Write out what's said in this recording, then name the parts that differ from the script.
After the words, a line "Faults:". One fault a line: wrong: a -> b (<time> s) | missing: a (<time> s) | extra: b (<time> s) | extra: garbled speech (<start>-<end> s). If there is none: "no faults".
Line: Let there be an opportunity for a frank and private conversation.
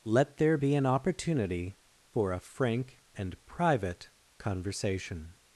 Let there be an opportunity for a frank and private conversation.
Faults:
no faults